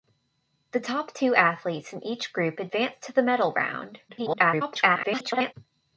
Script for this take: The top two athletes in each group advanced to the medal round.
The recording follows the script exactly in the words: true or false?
false